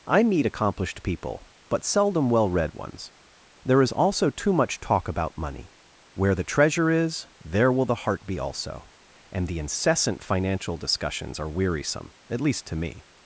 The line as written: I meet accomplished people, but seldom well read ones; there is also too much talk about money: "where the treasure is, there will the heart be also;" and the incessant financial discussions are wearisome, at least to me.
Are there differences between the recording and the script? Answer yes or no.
no